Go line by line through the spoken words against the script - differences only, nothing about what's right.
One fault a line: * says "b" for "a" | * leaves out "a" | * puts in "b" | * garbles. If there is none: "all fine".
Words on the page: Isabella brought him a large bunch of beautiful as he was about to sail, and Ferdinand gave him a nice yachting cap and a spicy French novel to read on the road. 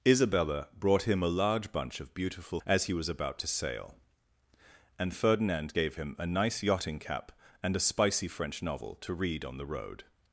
all fine